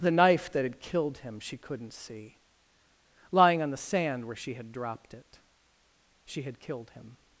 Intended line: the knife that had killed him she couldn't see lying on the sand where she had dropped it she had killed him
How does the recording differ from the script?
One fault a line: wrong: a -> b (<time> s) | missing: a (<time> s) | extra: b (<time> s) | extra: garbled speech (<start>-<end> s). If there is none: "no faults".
no faults